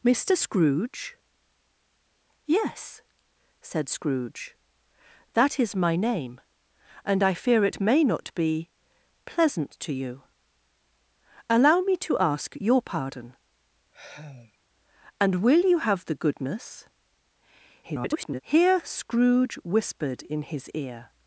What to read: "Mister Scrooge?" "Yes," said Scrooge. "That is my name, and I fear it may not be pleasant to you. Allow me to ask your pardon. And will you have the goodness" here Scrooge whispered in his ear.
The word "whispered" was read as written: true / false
true